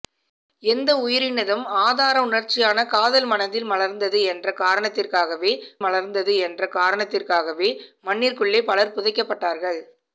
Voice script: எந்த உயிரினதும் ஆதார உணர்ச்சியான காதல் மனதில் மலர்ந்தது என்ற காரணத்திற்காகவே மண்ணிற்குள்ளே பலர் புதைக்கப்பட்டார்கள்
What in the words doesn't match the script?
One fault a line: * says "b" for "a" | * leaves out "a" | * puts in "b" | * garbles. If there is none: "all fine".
* puts in "மலர்ந்தது என்ற காரணத்திற்காகவே"